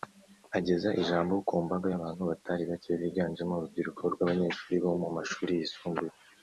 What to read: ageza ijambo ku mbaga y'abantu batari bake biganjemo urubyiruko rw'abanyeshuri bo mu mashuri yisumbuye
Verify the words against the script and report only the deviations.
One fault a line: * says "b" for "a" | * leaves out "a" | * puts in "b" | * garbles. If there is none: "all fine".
all fine